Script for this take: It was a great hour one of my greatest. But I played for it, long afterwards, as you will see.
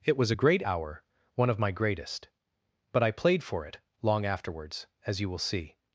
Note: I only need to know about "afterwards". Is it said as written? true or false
true